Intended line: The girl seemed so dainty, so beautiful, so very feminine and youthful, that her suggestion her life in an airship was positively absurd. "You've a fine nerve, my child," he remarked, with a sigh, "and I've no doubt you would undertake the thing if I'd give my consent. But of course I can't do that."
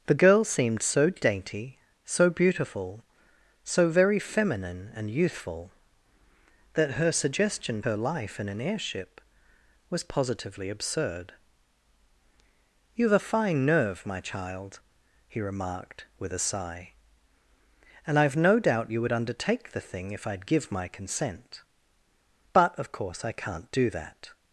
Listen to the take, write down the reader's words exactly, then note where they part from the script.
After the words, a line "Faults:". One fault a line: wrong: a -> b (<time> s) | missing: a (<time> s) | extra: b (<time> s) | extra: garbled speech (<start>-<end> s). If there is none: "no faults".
The girl seemed so dainty, so beautiful, so very feminine and youthful, that her suggestion her life in an airship was positively absurd. "You've a fine nerve, my child," he remarked, with a sigh, "and I've no doubt you would undertake the thing if I'd give my consent. But of course I can't do that."
Faults:
no faults